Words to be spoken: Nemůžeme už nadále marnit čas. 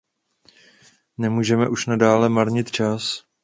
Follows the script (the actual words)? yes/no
yes